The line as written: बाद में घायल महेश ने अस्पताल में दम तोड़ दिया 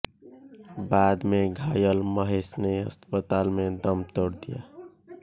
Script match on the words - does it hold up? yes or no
yes